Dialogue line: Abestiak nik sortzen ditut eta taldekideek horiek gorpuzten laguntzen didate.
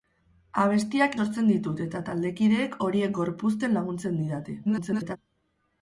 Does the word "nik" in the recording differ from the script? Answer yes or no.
yes